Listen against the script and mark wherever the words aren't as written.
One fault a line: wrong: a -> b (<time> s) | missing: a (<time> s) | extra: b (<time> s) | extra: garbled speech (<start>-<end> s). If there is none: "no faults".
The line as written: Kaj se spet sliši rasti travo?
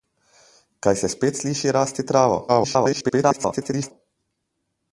extra: garbled speech (2.5-3.9 s)